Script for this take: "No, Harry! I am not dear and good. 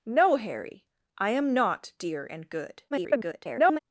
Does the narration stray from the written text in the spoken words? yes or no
yes